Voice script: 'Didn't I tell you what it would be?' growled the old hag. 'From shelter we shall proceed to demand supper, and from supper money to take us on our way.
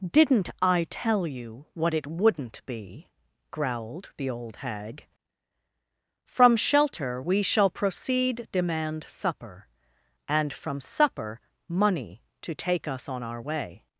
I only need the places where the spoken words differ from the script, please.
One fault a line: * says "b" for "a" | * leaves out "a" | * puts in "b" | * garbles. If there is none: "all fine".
* says "wouldn't" for "would"
* leaves out "to"